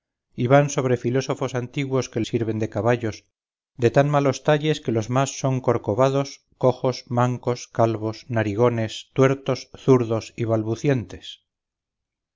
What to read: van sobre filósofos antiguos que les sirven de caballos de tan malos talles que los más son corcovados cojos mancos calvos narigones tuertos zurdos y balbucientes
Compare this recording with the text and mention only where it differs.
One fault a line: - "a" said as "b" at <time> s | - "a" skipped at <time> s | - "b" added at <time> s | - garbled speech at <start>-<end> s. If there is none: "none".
- "les" skipped at 2.2 s